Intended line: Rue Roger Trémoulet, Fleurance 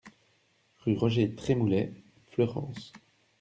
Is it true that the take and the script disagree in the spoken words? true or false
false